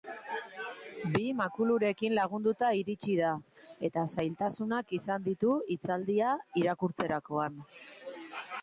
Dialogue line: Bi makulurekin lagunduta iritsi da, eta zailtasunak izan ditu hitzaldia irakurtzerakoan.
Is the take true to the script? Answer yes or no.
yes